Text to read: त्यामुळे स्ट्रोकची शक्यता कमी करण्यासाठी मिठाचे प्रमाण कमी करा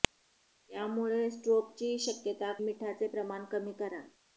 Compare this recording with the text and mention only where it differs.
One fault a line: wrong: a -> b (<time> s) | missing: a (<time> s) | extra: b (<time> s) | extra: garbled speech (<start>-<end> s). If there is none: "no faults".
missing: कमी करण्यासाठी (2.5 s)